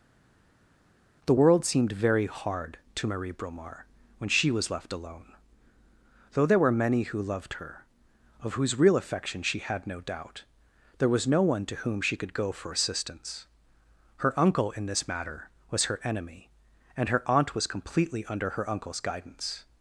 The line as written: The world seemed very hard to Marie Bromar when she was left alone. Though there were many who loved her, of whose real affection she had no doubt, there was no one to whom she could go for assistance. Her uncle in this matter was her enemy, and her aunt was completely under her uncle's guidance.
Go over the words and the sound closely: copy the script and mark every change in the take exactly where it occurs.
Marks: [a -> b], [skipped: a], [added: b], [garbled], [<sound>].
The world seemed very hard to Marie Bromar when she was left alone. Though there were many who loved her, of whose real affection she had no doubt, there was no one to whom she could go for assistance. Her uncle in this matter was her enemy, and her aunt was completely under her uncle's guidance.